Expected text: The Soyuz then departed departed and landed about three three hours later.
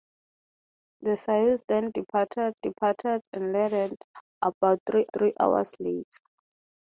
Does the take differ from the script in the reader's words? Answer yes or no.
no